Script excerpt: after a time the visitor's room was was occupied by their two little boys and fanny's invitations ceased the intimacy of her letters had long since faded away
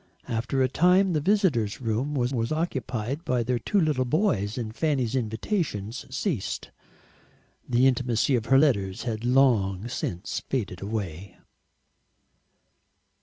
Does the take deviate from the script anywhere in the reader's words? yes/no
no